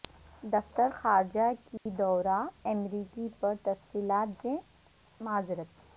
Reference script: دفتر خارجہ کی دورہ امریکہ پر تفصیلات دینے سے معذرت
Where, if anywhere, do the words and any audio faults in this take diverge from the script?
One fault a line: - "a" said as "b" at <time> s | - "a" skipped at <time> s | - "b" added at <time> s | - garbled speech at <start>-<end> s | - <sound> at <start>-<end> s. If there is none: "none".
- dropout at 1.8-1.9 s
- "دینے" skipped at 4.3 s